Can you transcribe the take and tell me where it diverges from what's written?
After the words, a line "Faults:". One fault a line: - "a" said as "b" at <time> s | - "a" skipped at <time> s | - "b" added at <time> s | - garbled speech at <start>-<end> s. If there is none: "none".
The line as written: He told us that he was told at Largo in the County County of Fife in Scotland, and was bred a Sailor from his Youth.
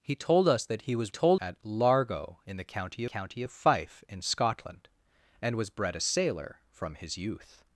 He told us that he was told at Largo in the County County of Fife in Scotland, and was bred a Sailor from his Youth.
Faults:
none